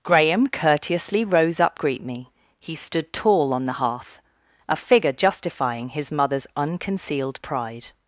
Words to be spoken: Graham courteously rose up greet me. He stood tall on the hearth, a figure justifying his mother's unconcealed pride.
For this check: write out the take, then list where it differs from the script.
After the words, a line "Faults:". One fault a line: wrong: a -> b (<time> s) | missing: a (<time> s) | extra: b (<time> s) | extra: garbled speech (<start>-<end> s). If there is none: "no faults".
Graham courteously rose up greet me. He stood tall on the hearth, a figure justifying his mother's unconcealed pride.
Faults:
no faults